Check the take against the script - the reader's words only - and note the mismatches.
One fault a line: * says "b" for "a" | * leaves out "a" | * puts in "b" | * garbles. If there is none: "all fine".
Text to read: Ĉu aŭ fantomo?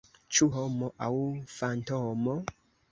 * puts in "homo"